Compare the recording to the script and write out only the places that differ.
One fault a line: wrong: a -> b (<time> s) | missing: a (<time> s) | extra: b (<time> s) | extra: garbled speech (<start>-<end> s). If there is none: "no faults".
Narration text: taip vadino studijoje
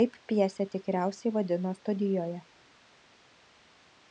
extra: pjesę tikriausiai (0.3 s)